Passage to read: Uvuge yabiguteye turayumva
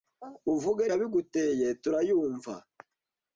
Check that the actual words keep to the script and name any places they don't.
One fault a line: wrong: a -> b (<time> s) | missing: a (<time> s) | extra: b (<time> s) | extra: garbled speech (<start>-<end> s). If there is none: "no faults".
no faults